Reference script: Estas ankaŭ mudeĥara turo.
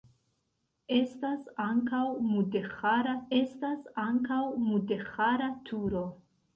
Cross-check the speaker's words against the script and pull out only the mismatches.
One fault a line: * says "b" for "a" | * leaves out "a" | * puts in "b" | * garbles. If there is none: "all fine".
* puts in "estas ankaŭ mudeĥara"